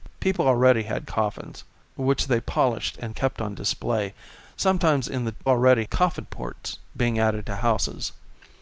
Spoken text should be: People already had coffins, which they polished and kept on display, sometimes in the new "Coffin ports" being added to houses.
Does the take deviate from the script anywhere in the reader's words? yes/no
yes